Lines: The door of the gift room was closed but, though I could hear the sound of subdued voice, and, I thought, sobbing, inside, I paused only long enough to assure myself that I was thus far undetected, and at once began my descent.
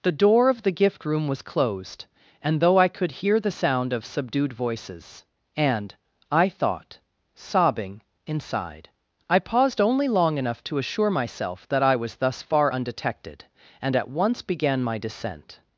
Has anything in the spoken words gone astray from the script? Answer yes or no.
yes